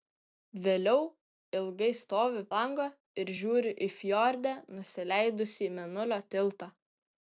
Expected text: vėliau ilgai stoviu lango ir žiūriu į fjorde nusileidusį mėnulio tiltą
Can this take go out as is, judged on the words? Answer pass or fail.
pass